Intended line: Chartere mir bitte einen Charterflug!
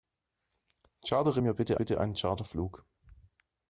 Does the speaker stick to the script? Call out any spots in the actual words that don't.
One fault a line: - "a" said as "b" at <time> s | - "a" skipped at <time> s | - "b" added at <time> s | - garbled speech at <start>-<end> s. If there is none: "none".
- "bitte" added at 1.7 s